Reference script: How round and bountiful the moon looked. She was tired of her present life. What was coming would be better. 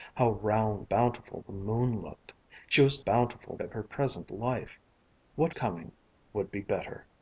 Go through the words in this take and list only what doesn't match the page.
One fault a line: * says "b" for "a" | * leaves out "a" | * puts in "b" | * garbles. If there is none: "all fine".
* leaves out "and"
* says "bountiful" for "tired"
* leaves out "was"